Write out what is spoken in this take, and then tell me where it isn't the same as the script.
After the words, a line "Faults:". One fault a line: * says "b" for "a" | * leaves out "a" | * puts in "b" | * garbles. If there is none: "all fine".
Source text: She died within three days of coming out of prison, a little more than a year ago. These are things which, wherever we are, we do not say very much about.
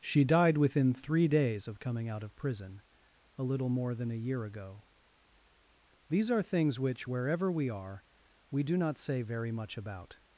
She died within three days of coming out of prison, a little more than a year ago. These are things which, wherever we are, we do not say very much about.
Faults:
all fine